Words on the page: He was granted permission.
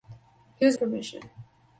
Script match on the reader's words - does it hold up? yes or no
no